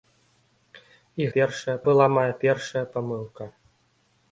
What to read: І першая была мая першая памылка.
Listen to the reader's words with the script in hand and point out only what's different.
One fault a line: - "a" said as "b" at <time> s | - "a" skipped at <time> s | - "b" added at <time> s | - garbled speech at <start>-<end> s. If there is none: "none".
none